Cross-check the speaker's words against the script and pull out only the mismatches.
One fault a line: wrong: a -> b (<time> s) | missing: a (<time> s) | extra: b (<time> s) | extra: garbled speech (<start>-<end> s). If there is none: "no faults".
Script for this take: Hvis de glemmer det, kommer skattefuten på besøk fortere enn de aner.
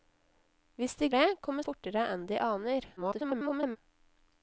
missing: glemmer (1.1 s)
missing: skattefuten på besøk (1.7 s)
extra: garbled speech (3.0-3.8 s)